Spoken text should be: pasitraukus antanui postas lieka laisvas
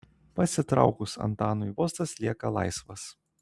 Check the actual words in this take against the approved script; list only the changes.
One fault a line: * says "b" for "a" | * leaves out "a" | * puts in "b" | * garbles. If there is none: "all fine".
all fine